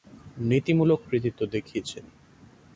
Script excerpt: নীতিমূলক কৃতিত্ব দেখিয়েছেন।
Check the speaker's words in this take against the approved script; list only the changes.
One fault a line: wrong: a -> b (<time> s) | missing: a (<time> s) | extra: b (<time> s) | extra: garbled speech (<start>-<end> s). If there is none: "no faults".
no faults